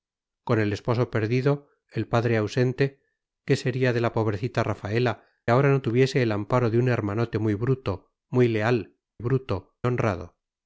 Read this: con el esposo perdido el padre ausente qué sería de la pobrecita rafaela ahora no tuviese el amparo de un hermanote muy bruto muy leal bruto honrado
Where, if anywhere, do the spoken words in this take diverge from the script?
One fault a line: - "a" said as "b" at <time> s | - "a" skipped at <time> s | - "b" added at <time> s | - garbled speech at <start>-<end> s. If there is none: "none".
none